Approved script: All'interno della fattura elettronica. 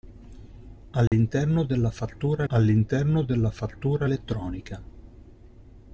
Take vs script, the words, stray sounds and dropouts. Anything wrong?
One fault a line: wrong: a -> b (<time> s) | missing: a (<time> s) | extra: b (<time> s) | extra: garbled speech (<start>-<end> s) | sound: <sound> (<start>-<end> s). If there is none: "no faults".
sound: dropout (1.1-1.1 s)
extra: all'interno della fattura (2.5 s)